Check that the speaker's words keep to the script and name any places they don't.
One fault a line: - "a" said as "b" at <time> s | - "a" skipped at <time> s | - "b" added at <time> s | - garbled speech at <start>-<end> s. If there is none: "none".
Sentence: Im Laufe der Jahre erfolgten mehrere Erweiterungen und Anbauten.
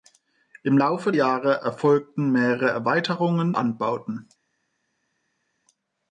- "der" skipped at 1.1 s
- "und" skipped at 3.6 s